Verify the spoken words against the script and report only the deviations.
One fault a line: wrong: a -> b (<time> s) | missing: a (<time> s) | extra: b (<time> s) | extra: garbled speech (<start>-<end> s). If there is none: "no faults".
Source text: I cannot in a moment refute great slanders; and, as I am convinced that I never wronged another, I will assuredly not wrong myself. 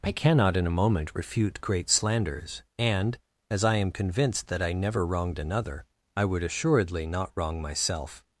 wrong: will -> would (6.2 s)